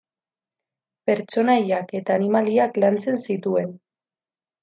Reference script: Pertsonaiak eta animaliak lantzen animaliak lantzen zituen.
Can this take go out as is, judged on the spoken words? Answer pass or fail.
fail